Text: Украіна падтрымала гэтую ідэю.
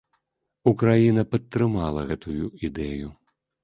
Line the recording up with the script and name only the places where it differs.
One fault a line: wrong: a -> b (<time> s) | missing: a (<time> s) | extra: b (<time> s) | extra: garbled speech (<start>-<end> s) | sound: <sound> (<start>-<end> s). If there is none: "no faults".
no faults